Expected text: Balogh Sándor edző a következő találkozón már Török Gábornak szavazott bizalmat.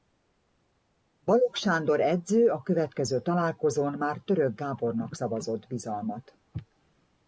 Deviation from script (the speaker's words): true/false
false